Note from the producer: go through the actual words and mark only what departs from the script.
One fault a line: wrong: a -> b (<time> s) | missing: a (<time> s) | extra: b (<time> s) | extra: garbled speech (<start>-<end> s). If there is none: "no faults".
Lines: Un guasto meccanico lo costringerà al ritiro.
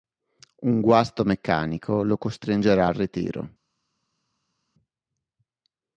no faults